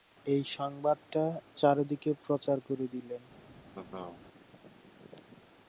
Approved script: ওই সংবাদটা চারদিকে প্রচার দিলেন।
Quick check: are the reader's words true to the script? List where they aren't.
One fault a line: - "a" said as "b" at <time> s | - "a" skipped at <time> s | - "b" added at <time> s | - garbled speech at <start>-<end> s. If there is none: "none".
- "ওই" said as "এই" at 0.2 s
- "করে" added at 2.6 s